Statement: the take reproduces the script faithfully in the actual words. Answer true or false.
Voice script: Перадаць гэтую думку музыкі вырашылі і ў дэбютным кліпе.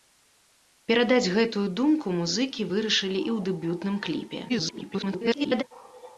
false